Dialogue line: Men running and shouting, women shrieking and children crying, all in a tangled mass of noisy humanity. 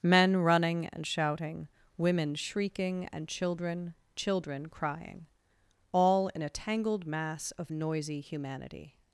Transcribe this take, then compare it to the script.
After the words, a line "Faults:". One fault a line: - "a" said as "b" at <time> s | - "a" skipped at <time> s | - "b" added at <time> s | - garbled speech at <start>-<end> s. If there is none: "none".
Men running and shouting, women shrieking and children children crying, all in a tangled mass of noisy humanity.
Faults:
- "children" added at 4.2 s